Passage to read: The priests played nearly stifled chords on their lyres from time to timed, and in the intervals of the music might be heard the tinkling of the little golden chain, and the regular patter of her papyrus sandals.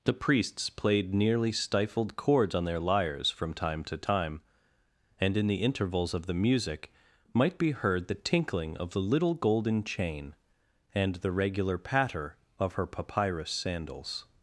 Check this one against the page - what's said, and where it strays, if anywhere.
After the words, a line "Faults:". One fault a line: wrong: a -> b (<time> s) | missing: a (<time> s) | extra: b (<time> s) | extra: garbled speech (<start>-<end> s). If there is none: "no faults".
The priests played nearly stifled chords on their lyres from time to time, and in the intervals of the music might be heard the tinkling of the little golden chain, and the regular patter of her papyrus sandals.
Faults:
wrong: timed -> time (4.0 s)